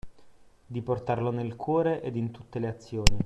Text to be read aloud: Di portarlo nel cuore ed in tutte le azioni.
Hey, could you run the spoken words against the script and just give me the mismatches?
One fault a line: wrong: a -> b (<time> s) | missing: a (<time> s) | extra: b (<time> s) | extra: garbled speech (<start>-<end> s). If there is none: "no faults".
no faults